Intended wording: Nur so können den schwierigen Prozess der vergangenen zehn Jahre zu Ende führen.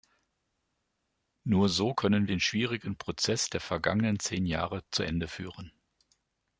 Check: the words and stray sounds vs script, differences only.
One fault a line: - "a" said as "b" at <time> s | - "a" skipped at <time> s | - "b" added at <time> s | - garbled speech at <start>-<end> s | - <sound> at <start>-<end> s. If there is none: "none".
none